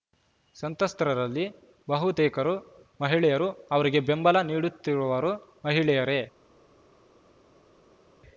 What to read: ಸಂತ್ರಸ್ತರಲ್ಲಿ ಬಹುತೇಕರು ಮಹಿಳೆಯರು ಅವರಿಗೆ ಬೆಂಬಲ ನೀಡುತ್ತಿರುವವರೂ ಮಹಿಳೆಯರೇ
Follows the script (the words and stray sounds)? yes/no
yes